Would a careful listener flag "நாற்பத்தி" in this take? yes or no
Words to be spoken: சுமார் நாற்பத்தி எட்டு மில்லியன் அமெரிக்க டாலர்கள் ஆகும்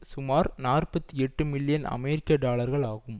no